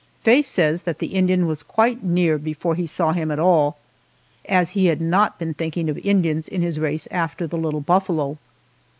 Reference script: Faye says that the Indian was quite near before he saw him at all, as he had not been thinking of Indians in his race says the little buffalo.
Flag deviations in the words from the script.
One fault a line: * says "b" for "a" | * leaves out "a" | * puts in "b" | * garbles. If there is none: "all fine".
* says "after" for "says"